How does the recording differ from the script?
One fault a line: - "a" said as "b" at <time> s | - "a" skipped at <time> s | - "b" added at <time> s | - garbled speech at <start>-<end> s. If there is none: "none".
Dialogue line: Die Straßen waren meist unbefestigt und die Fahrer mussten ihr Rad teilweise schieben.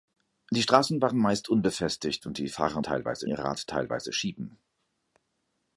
- "mussten" said as "teilweise" at 2.8 s